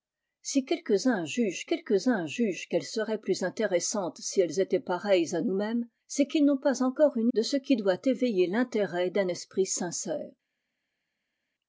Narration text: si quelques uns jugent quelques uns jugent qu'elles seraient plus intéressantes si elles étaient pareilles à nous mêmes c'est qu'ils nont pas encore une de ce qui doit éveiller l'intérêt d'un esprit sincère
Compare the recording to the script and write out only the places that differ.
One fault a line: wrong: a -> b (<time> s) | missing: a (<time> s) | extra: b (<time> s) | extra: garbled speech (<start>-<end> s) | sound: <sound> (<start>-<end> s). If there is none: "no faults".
no faults